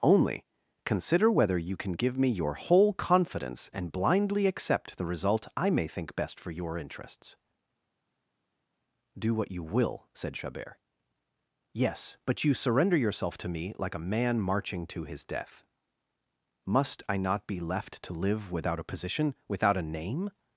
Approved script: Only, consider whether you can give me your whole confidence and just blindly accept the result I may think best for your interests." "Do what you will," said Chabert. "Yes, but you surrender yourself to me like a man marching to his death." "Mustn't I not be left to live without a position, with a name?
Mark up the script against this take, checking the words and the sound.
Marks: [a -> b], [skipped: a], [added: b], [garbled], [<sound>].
Only, consider whether you can give me your whole confidence and [skipped: just] blindly accept the result I may think best for your interests." "Do what you will," said Chabert. "Yes, but you surrender yourself to me like a man marching to his death." ["Mustn't -> Must] I not be left to live without a position, [with -> without] a name?